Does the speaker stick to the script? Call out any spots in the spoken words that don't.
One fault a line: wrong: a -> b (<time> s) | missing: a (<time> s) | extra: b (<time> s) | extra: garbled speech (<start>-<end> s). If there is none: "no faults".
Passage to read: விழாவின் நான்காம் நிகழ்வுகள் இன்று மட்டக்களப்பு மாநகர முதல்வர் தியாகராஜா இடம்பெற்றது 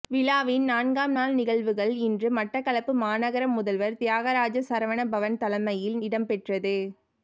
extra: நாள் (1.1 s)
extra: சரவணபவன் தலைமையில் (4.7 s)